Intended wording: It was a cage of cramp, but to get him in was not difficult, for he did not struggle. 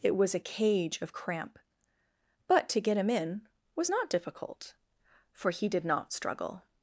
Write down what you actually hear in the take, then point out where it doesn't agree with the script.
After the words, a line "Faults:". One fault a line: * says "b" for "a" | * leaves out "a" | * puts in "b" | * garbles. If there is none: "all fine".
It was a cage of cramp, but to get him in was not difficult, for he did not struggle.
Faults:
all fine